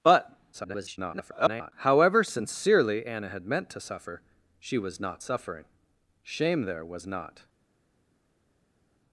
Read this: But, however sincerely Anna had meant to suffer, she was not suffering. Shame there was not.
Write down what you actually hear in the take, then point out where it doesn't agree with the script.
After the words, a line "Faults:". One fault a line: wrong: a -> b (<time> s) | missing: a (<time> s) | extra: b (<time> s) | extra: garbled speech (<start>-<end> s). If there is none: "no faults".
But, [garbled] however sincerely Anna had meant to suffer, she was not suffering. Shame there was not.
Faults:
extra: garbled speech (0.5-1.7 s)